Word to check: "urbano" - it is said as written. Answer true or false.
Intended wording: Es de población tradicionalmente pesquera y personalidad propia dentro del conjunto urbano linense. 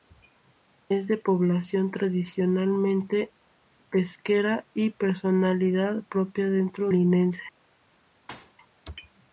false